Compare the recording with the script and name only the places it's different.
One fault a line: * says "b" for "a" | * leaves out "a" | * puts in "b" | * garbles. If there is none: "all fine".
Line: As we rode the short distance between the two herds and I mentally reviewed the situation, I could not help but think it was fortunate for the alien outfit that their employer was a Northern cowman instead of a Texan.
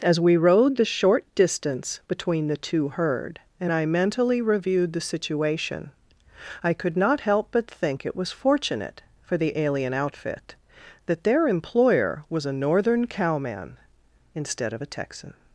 * says "herd" for "herds"